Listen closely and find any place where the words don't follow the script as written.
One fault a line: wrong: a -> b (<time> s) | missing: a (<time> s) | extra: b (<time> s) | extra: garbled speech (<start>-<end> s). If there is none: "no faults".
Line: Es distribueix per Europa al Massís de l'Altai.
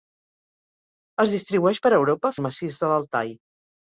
no faults